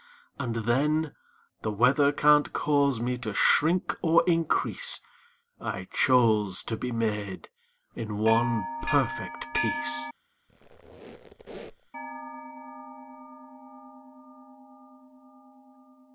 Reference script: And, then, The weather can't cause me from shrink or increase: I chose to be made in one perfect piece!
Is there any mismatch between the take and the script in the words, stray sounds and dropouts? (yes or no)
yes